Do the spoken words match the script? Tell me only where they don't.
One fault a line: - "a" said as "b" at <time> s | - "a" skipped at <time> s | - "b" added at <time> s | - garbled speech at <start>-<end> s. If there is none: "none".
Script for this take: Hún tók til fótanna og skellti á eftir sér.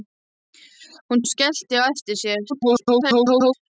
- "tók til fótanna" skipped at 1.2 s
- garbled speech at 2.5-3.5 s